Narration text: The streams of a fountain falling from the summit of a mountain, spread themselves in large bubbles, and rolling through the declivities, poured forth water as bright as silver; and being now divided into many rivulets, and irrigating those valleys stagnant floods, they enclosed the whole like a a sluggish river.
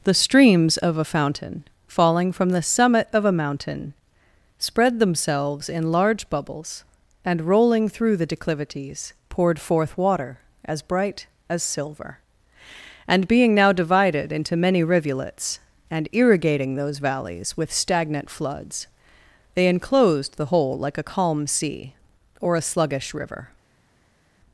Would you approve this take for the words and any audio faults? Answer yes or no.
no